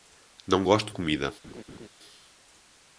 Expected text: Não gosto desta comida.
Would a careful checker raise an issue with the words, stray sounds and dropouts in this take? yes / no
yes